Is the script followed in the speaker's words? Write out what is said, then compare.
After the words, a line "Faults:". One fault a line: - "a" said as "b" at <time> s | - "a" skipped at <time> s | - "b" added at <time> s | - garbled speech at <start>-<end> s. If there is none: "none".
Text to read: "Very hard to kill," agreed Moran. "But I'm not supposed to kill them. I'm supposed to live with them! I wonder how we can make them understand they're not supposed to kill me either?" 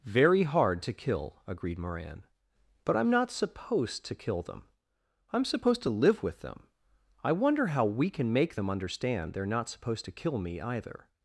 "Very hard to kill," agreed Moran. "But I'm not supposed to kill them. I'm supposed to live with them! I wonder how we can make them understand they're not supposed to kill me either?"
Faults:
none